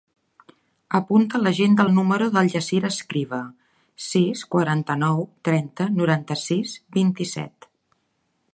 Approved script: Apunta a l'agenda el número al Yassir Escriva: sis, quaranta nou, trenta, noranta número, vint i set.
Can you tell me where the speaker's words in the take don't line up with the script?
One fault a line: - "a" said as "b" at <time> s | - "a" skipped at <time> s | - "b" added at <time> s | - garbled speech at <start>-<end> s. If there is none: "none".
- "al" said as "del" at 2.3 s
- "número" said as "sis" at 6.4 s